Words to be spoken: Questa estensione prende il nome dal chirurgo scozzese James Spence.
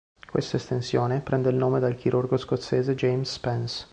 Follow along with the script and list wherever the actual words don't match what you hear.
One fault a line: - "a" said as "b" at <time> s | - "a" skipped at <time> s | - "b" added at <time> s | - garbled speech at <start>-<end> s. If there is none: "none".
none